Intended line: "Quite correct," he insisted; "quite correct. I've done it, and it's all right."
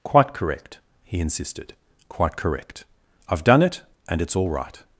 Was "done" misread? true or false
false